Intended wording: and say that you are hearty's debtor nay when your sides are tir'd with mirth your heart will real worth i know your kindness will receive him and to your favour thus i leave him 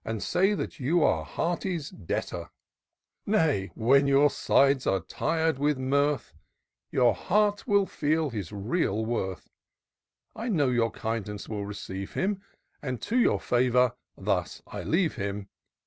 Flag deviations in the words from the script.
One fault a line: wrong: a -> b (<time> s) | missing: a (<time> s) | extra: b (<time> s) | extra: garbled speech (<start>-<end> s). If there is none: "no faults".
extra: feel his (7.8 s)